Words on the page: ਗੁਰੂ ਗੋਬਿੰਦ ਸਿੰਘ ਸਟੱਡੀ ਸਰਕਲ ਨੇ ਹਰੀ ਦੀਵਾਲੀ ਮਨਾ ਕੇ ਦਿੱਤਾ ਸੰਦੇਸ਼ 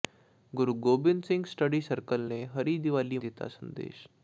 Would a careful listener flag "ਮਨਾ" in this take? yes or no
yes